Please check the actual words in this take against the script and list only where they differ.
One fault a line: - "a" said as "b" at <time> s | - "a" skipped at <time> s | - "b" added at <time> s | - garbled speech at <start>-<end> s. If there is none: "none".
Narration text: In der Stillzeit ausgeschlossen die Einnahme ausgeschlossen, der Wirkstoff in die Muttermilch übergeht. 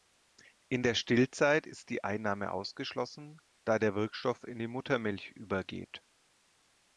- "ausgeschlossen" said as "ist" at 1.7 s
- "da" added at 3.6 s